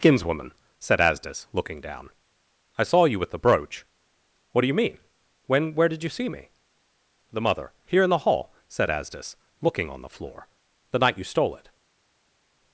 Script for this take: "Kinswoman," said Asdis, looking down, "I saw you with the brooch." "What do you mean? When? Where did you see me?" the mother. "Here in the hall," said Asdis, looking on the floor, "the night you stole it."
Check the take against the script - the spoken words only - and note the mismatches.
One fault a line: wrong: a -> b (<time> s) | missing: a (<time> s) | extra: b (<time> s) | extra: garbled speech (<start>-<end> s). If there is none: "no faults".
no faults